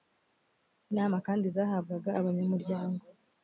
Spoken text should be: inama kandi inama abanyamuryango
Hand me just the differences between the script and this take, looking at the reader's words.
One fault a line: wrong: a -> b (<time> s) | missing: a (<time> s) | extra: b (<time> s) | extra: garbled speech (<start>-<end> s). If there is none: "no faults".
wrong: inama -> zahabwaga (1.5 s)